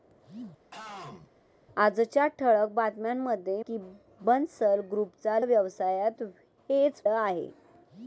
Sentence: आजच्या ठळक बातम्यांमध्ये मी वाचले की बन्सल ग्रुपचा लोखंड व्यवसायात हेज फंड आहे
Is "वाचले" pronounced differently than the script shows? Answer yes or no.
yes